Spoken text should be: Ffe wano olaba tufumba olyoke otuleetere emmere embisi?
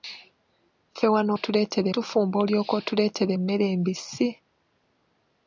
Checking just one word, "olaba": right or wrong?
wrong